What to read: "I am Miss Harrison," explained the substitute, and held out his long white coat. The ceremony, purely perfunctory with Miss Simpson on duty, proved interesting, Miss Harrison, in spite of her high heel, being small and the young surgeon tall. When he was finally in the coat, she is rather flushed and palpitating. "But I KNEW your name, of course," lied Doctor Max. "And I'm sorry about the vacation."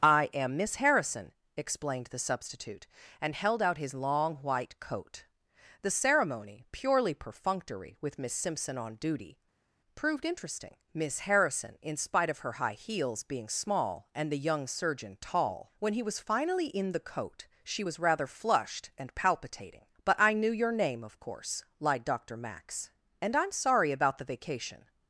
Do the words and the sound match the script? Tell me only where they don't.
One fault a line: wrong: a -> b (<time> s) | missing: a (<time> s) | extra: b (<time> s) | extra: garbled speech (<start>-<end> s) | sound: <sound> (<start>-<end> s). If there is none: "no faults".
wrong: heel -> heels (12.7 s)
wrong: is -> was (17.8 s)